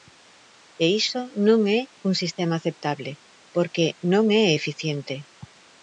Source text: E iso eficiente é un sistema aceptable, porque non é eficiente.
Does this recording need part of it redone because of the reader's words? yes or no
yes